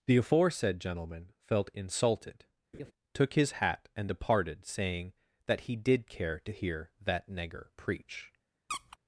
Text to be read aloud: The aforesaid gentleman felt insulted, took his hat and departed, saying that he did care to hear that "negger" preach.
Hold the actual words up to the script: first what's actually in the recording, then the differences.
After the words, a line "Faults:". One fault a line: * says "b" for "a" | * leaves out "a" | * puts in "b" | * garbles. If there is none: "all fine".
The aforesaid gentleman felt insulted, took his hat and departed, saying that he did care to hear that "negger" preach.
Faults:
all fine